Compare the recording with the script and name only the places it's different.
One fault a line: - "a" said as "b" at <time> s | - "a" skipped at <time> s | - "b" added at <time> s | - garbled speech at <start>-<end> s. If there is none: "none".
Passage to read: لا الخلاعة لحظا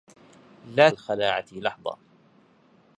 none